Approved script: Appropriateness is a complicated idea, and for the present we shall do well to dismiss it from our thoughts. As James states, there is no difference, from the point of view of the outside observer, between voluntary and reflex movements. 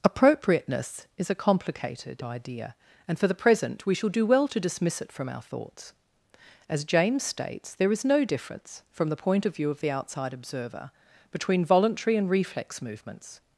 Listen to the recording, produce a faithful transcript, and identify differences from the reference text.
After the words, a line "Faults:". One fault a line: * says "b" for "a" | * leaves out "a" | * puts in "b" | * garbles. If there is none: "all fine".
Appropriateness is a complicated idea, and for the present we shall do well to dismiss it from our thoughts. As James states, there is no difference, from the point of view of the outside observer, between voluntary and reflex movements.
Faults:
all fine